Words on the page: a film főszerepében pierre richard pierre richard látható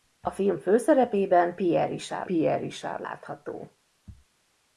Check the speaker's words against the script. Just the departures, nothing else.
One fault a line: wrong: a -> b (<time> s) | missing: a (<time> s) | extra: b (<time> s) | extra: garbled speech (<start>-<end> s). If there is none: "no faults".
no faults